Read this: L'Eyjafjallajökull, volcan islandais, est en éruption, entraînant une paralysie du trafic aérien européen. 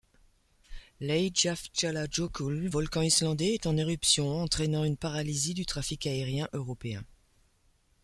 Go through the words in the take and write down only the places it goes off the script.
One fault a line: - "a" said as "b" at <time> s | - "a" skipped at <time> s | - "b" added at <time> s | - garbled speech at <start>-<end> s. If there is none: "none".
none